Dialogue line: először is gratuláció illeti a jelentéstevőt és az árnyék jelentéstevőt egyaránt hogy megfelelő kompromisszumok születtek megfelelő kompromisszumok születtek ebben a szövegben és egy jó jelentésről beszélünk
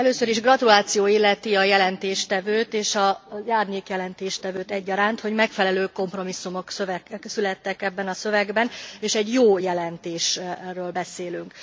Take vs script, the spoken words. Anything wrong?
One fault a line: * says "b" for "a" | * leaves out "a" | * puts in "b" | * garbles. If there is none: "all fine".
* leaves out "megfelelő kompromisszumok születtek"